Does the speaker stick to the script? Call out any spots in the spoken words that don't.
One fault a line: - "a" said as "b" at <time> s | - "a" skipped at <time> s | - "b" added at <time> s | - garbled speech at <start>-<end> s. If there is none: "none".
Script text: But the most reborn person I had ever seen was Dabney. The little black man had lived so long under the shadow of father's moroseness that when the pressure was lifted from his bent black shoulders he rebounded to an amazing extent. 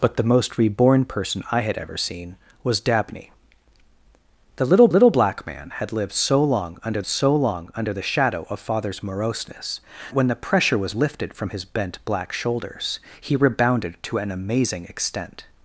- "little" added at 4.9 s
- "so long under" added at 7.1 s
- "that" skipped at 9.8 s